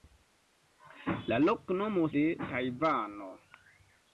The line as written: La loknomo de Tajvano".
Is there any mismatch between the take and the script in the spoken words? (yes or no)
no